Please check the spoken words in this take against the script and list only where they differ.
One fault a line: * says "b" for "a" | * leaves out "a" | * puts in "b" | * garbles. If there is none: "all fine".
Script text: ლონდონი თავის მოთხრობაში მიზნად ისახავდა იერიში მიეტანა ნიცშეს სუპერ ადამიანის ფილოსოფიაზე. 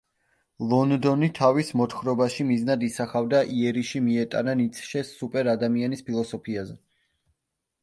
all fine